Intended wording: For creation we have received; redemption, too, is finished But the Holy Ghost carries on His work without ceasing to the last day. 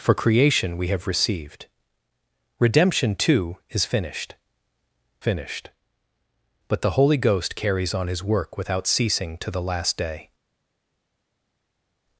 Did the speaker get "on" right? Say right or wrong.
right